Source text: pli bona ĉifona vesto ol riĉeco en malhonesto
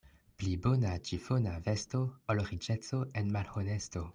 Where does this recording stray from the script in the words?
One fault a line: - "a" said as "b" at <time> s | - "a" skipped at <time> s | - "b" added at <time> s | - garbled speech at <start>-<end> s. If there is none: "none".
none